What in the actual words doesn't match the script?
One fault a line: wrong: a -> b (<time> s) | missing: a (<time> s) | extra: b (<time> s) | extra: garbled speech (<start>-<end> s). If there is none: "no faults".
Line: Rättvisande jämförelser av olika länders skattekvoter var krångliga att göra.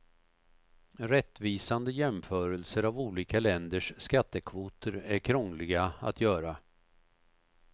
wrong: var -> är (4.9 s)